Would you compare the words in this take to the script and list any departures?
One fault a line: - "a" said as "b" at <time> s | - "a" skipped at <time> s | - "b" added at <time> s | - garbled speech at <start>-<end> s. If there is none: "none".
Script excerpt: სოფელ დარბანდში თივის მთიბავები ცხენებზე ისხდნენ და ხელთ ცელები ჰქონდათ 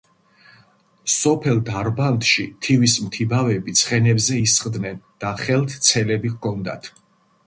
none